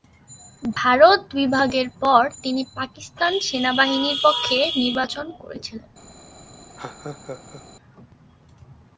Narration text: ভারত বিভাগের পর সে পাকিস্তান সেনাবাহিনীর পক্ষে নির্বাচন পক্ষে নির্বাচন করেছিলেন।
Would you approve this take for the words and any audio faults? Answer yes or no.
no